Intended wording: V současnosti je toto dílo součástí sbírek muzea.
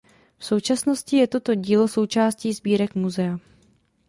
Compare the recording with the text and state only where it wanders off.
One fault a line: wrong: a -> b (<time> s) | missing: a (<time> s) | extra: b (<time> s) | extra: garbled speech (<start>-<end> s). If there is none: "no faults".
no faults